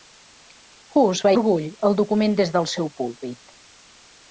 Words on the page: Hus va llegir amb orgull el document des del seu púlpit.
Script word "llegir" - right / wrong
wrong